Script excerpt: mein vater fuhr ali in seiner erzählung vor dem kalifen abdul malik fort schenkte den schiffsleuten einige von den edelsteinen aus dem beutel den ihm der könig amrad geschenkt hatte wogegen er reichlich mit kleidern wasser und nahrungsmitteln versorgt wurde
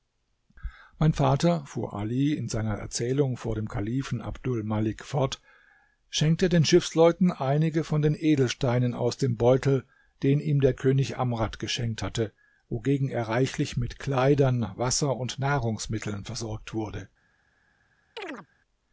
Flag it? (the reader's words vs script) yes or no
no